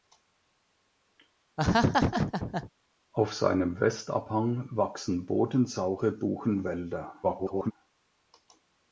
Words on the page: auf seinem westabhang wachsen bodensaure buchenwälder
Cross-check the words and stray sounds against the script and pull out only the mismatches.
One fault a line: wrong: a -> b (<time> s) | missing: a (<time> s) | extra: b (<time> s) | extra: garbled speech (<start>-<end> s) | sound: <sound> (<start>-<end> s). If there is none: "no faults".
sound: laugh (1.6-2.7 s)
extra: garbled speech (7.2-7.7 s)